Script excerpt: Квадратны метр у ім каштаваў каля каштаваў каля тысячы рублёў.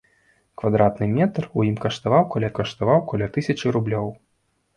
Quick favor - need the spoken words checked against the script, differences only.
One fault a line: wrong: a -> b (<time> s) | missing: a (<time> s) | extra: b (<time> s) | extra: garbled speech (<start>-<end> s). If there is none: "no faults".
no faults